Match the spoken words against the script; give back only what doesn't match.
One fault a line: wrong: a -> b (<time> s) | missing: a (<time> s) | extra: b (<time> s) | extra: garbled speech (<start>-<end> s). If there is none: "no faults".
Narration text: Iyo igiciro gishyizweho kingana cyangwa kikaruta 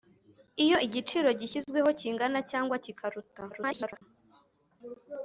extra: garbled speech (3.5-4.0 s)